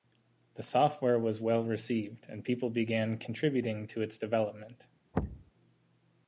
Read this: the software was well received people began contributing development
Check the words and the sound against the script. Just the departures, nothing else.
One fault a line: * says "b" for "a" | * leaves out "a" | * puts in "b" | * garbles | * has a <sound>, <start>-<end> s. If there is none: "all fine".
* puts in "and"
* puts in "to its"
* has a thud, 5.1-5.5 s